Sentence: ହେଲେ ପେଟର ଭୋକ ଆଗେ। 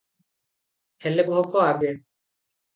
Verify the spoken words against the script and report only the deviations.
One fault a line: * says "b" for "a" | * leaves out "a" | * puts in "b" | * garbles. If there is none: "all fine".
* leaves out "ପେଟର"